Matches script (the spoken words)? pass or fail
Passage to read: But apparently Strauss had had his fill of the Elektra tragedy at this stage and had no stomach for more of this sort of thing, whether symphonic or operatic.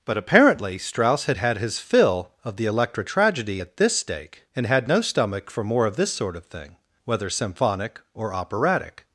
fail